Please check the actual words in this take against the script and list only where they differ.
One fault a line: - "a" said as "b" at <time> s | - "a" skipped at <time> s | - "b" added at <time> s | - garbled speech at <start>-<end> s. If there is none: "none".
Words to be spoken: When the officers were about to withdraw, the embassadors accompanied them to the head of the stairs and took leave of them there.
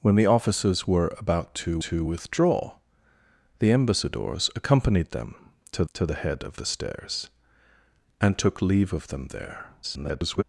- "to" added at 1.9 s
- "to" added at 5.9 s
- garbled speech at 9.8-10.4 s